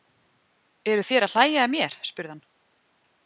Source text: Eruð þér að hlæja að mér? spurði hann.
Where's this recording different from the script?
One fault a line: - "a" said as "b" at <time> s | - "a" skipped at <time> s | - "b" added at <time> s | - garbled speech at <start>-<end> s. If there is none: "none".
none